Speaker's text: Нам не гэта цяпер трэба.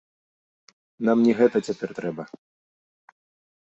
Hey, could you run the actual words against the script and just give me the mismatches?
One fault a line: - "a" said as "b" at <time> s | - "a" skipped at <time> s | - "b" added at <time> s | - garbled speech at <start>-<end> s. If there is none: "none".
none